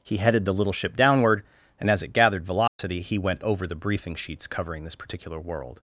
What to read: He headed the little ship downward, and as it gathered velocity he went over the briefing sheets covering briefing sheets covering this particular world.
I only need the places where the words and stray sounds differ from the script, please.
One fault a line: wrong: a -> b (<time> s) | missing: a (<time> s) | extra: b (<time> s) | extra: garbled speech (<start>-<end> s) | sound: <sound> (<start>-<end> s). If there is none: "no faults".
sound: dropout (2.7-2.8 s)
missing: briefing sheets covering (4.8 s)